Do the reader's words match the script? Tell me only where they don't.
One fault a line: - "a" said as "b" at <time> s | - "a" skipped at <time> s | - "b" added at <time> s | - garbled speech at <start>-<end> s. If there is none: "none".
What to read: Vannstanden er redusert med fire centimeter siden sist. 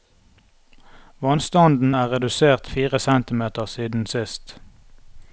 - "med" skipped at 2.7 s